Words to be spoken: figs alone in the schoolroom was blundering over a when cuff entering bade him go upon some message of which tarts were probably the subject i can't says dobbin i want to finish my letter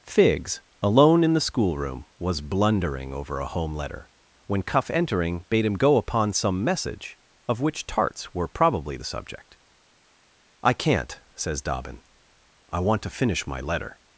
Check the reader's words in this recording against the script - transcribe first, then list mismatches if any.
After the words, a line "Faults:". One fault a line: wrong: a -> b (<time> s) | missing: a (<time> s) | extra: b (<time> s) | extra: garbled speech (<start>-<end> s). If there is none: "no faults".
figs alone in the schoolroom was blundering over a home letter when cuff entering bade him go upon some message of which tarts were probably the subject i can't says dobbin i want to finish my letter
Faults:
extra: home letter (3.5 s)